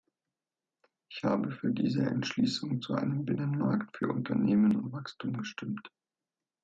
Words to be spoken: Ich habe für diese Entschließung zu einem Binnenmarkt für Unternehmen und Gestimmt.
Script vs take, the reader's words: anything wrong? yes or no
yes